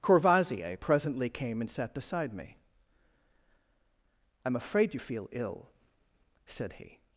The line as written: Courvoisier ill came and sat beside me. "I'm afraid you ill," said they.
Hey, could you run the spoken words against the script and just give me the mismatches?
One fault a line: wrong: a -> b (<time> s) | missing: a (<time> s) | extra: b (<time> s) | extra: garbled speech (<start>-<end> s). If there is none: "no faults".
wrong: ill -> presently (0.8 s)
extra: feel (5.0 s)
wrong: they -> he (6.7 s)